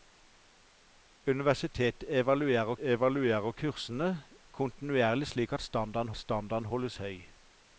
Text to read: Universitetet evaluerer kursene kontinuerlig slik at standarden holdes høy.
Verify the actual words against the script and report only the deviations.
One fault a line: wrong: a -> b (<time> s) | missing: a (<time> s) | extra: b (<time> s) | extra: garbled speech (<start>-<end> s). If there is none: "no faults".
extra: evaluerer (2.8 s)
extra: standarden (6.2 s)